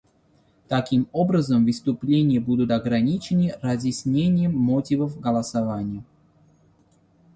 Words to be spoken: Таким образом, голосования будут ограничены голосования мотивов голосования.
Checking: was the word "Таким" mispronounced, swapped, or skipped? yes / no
no